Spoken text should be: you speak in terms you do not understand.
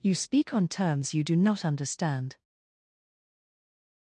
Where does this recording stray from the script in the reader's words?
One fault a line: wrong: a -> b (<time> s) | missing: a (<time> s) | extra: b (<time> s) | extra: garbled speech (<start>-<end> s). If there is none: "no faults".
wrong: in -> on (0.5 s)